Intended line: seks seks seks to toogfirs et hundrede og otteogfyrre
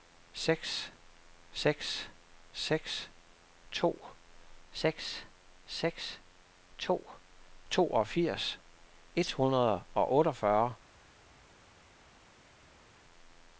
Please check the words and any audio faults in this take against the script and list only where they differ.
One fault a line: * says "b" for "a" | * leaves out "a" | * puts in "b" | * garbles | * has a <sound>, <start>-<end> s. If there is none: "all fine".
* puts in "seks seks to"